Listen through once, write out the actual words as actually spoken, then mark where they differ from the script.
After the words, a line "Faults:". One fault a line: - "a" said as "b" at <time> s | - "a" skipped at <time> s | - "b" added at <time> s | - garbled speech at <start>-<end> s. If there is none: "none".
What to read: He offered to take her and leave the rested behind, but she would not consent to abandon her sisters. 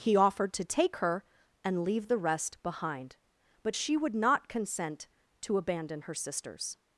He offered to take her and leave the rest behind, but she would not consent to abandon her sisters.
Faults:
- "rested" said as "rest" at 2.2 s